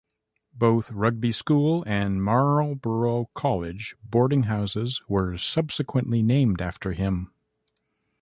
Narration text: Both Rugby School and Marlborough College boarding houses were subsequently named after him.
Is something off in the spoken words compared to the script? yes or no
no